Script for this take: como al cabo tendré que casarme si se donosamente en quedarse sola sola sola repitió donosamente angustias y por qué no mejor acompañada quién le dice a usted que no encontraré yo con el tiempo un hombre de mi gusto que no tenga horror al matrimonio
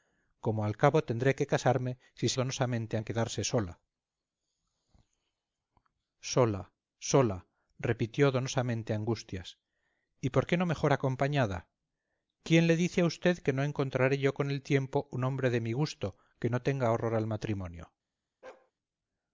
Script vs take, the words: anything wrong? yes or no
no